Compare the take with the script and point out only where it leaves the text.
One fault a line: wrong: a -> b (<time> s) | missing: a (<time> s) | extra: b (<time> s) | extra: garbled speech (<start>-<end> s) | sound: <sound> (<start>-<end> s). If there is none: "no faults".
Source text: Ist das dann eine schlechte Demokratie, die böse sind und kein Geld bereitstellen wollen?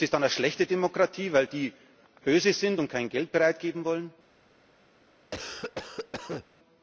extra: weil (1.3 s)
sound: cough (5.3-6.5 s)